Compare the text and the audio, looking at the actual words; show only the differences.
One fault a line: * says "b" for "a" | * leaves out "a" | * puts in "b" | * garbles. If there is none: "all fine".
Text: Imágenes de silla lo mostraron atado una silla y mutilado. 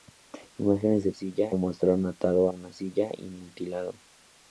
all fine